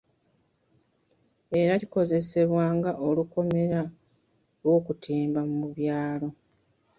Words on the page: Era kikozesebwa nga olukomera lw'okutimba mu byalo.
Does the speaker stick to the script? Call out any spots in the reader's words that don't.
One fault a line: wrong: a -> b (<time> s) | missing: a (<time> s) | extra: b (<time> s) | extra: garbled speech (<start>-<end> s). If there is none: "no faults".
no faults